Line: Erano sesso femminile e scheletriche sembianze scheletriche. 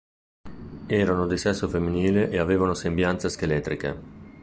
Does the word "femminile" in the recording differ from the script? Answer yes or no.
no